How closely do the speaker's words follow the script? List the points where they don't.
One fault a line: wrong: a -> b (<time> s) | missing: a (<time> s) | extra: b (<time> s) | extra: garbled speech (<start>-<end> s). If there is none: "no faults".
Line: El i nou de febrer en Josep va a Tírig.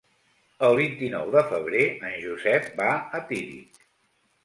extra: vint (0.8 s)